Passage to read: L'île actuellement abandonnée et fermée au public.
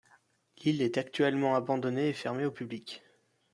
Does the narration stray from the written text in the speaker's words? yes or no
yes